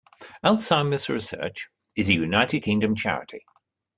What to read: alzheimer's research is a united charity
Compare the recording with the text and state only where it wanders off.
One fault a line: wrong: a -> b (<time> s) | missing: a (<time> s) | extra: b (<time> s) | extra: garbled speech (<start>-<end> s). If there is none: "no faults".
extra: kingdom (2.6 s)